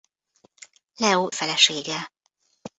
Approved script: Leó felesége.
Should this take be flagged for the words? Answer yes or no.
no